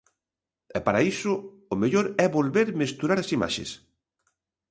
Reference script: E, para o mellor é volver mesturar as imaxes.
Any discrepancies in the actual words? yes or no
yes